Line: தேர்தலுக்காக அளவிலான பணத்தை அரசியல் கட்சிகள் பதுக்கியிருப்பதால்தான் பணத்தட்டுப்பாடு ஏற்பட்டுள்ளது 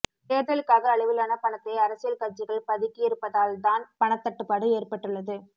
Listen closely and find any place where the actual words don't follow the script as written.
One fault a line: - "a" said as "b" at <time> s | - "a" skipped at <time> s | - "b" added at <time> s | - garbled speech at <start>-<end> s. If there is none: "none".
none